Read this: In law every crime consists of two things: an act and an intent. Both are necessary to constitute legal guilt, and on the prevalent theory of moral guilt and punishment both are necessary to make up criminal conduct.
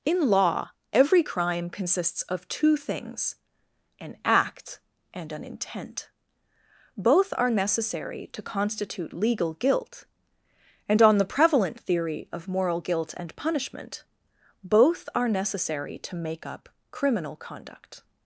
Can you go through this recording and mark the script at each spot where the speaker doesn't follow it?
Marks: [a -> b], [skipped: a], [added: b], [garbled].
In law every crime consists of two things: an act and an intent. Both are necessary to constitute legal guilt, and on the prevalent theory of moral guilt and punishment both are necessary to make up criminal conduct.